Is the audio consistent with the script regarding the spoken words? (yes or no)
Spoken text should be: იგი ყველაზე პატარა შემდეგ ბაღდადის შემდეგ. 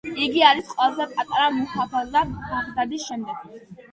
no